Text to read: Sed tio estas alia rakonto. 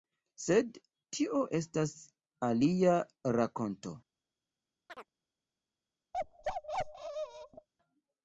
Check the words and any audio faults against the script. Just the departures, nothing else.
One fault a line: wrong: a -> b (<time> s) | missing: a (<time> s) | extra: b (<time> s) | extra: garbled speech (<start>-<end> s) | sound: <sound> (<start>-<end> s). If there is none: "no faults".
sound: chirp (4.9-5.1 s)
sound: bark (6.1-7.7 s)